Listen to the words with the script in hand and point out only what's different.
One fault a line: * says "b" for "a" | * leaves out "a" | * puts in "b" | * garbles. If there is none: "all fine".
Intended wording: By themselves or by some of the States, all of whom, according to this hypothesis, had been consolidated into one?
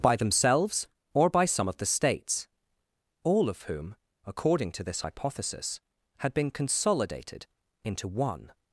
all fine